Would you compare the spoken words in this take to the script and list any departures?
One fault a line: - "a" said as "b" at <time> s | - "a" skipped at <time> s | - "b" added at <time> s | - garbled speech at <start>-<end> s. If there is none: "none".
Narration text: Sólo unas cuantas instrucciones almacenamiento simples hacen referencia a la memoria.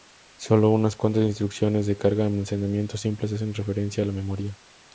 - "de carga" added at 1.9 s